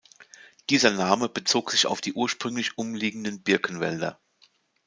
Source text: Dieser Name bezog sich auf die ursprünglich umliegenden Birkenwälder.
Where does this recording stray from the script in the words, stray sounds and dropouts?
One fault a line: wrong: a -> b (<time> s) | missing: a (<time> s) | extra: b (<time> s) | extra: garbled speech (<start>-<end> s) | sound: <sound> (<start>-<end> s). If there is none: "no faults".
no faults